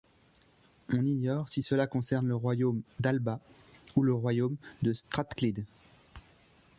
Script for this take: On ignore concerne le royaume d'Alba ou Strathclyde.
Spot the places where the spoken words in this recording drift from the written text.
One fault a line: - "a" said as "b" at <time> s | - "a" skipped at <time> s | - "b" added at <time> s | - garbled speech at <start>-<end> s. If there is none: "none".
- "si cela" added at 1.5 s
- "le royaume de" added at 4.0 s